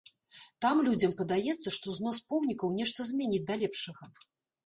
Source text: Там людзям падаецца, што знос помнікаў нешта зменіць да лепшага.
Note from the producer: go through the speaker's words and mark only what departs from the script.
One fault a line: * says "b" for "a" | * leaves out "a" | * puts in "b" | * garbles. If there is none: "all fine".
all fine